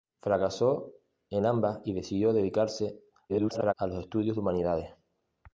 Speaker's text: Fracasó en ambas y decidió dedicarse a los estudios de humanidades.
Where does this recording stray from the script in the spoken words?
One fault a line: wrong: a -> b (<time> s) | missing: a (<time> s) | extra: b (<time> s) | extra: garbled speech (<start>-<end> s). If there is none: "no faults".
extra: garbled speech (3.3-3.7 s)